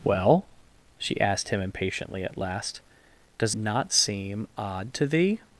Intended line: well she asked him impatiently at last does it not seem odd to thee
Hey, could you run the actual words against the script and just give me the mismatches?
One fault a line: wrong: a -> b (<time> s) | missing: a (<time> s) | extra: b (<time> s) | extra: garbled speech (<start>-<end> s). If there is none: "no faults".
missing: it (3.5 s)